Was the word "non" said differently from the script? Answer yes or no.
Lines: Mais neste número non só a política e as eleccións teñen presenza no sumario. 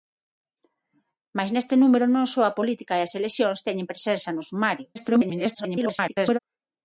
no